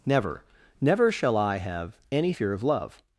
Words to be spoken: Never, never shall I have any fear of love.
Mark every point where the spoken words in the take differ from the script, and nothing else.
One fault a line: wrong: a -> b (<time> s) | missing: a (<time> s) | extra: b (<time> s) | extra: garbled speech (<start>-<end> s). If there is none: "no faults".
no faults